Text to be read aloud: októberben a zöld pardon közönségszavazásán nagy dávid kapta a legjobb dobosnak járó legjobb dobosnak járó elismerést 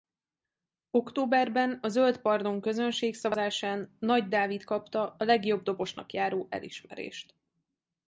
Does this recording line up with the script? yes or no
no